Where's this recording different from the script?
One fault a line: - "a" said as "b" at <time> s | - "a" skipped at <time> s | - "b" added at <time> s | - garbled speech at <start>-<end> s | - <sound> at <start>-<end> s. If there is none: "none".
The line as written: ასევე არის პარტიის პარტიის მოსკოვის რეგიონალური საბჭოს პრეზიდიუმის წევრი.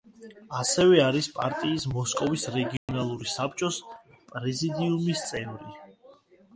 - "პარტიის" skipped at 1.9 s
- dropout at 2.8-2.9 s